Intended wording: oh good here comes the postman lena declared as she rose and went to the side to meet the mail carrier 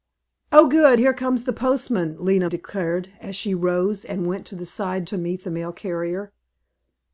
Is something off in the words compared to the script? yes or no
no